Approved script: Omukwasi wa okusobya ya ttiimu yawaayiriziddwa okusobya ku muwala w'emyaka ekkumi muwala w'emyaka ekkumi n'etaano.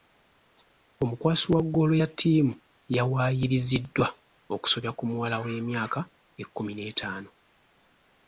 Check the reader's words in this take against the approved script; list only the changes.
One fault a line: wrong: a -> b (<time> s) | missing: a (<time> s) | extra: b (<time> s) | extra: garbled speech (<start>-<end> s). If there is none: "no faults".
wrong: okusobya -> ggoolo (1.6 s)
missing: muwala w'emyaka ekkumi (6.7 s)